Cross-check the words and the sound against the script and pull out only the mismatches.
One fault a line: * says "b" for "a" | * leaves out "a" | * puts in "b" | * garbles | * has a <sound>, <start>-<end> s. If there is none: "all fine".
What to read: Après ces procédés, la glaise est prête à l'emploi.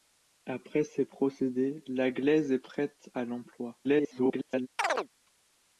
* garbles
* has a chirp, 4.8-5.1 s